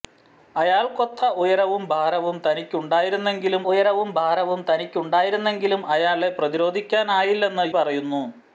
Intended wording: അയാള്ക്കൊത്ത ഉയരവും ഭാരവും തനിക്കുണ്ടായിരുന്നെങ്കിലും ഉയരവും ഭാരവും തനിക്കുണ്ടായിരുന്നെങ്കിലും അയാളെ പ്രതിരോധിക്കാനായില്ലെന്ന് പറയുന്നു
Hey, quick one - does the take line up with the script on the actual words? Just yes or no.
yes